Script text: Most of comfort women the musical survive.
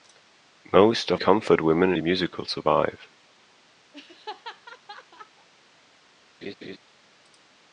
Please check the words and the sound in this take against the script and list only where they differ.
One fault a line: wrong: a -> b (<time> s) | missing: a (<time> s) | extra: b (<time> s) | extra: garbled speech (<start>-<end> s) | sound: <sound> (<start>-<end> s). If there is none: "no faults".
sound: laugh (3.9-5.5 s)
sound: laugh (6.4-6.8 s)